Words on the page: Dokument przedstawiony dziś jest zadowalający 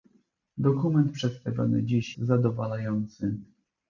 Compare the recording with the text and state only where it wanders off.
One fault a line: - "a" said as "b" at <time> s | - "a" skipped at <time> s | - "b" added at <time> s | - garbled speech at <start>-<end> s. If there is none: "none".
- "jest" skipped at 2.2 s